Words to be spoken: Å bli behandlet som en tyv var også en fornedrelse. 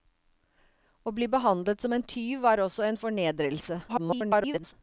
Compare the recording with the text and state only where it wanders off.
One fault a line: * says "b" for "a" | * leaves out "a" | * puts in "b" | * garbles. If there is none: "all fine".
* garbles